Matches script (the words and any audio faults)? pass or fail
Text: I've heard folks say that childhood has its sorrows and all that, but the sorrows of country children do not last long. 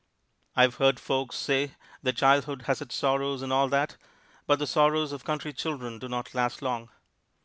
pass